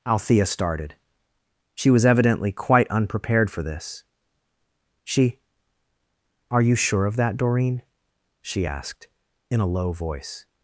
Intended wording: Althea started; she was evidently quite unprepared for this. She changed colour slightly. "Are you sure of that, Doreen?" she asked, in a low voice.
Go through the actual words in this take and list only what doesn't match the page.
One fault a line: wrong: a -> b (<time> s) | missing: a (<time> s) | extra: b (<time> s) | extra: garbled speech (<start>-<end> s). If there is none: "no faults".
missing: changed colour slightly (5.4 s)